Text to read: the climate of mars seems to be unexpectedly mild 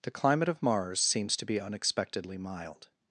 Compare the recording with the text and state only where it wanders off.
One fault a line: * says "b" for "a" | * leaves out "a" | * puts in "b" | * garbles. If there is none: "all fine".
all fine